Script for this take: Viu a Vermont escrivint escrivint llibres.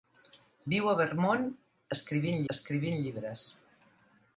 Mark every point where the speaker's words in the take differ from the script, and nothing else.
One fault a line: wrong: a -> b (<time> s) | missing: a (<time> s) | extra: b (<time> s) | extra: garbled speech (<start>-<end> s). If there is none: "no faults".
no faults